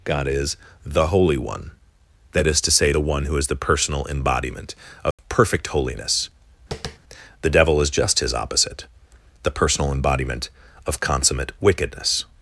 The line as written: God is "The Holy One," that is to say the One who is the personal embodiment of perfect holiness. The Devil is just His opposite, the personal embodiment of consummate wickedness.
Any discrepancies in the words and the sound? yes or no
yes